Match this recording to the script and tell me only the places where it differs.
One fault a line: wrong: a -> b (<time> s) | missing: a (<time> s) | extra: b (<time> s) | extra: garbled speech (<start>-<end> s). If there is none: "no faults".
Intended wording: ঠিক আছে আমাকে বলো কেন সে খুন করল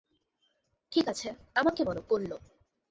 missing: কেন সে খুন (2.0 s)